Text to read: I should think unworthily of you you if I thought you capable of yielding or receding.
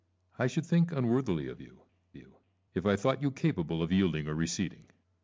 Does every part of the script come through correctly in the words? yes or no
yes